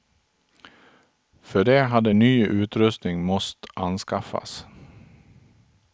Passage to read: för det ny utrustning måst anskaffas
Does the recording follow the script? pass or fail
fail